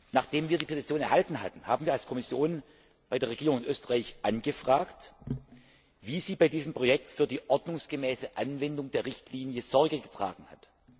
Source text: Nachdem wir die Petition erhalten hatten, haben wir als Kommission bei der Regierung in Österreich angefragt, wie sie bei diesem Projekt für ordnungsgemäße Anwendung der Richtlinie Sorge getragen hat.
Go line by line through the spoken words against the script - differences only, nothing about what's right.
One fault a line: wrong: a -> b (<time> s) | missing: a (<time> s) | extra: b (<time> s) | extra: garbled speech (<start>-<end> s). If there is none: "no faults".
extra: die (7.3 s)